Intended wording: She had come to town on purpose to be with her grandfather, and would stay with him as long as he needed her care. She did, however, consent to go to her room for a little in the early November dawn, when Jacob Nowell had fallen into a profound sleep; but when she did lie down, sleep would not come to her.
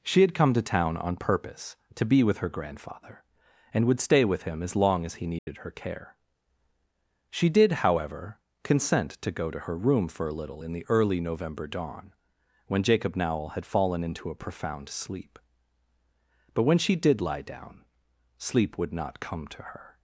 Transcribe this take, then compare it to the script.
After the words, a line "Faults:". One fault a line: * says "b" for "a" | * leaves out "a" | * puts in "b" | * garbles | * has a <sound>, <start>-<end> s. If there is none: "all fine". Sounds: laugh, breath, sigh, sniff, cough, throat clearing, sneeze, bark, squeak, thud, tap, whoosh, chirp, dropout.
She had come to town on purpose to be with her grandfather, and would stay with him as long as he needed her care. She did, however, consent to go to her room for a little in the early November dawn, when Jacob Nowell had fallen into a profound sleep; but when she did lie down, sleep would not come to her.
Faults:
* has a dropout, 5.4-5.5 s